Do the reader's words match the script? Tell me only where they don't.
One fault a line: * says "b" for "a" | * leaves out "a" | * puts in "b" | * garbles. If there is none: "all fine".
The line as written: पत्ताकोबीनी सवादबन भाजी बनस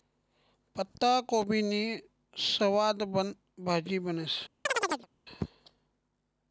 all fine